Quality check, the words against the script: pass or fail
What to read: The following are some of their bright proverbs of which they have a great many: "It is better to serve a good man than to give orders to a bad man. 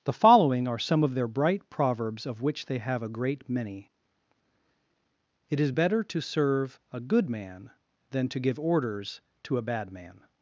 pass